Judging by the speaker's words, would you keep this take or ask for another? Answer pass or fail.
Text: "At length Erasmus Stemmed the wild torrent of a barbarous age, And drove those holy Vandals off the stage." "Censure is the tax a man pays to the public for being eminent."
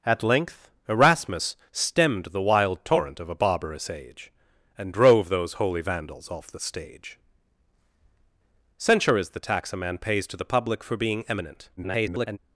fail